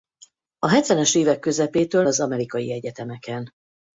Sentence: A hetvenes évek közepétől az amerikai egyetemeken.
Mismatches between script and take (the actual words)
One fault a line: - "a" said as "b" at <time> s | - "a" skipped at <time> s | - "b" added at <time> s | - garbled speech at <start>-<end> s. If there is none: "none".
none